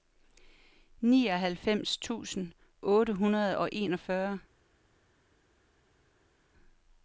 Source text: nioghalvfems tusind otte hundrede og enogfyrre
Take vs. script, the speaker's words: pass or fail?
pass